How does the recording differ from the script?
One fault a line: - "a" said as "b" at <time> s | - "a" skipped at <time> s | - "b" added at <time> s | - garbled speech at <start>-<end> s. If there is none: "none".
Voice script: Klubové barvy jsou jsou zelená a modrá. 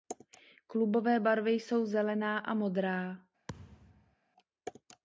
- "jsou" skipped at 1.9 s